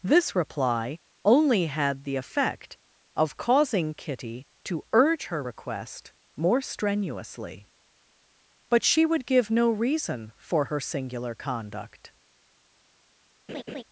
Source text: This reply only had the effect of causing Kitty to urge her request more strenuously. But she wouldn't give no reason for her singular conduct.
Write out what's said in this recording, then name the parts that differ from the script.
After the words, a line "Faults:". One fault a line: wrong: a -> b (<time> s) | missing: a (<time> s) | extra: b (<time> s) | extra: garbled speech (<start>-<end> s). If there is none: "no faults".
This reply only had the effect of causing Kitty to urge her request more strenuously. But she would give no reason for her singular conduct.
Faults:
wrong: wouldn't -> would (9.0 s)